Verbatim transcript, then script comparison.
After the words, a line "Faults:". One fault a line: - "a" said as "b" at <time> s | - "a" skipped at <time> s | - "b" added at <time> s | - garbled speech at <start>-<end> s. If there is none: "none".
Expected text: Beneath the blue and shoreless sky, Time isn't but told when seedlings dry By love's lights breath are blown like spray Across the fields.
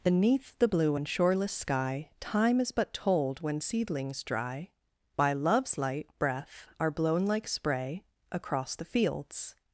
Beneath the blue and shoreless sky, Time is but told when seedlings dry By love's light breath are blown like spray Across the fields.
Faults:
- "isn't" said as "is" at 2.6 s
- "lights" said as "light" at 5.8 s